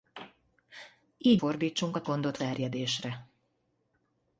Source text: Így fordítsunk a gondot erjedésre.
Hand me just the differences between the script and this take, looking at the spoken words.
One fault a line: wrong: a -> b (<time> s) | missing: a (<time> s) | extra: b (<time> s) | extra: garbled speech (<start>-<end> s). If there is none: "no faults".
no faults